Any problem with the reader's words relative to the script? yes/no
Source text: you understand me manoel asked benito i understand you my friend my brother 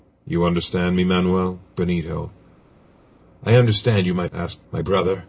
yes